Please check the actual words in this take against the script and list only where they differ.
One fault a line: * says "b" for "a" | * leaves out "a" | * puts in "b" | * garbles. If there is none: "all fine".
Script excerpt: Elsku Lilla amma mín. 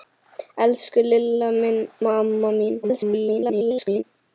* garbles